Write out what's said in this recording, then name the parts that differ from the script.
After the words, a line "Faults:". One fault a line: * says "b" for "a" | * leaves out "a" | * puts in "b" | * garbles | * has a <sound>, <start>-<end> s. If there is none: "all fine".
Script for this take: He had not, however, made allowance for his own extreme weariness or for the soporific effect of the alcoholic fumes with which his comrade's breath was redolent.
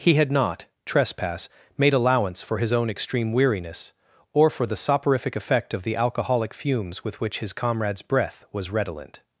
He had not, trespass, made allowance for his own extreme weariness or for the soporific effect of the alcoholic fumes with which his comrade's breath was redolent.
Faults:
* says "trespass" for "however"